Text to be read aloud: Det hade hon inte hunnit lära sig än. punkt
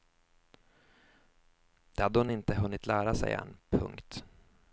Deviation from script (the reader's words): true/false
false